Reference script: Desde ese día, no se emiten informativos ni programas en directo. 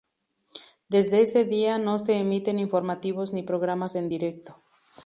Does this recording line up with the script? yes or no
yes